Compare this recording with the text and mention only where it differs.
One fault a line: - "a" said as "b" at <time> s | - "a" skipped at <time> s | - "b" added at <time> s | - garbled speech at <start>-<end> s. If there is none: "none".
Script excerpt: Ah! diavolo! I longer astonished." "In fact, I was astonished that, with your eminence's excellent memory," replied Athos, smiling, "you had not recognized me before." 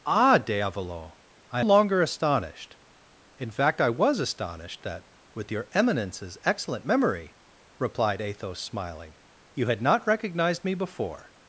none